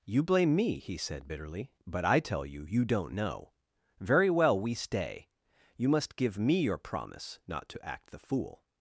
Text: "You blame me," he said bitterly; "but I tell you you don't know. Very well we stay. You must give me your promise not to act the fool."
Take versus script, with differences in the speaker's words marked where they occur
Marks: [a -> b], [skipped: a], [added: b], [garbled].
"You blame me," he said bitterly; "but I tell you you don't know. Very well we stay. You must give me your promise not to act the fool."